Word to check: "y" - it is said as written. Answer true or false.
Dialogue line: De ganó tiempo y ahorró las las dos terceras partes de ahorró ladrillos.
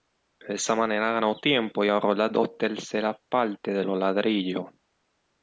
true